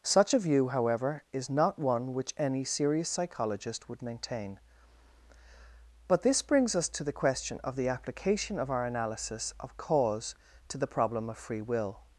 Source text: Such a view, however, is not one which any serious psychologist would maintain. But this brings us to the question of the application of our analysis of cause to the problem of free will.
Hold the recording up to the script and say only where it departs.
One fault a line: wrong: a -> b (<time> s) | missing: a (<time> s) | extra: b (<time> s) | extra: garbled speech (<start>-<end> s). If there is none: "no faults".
no faults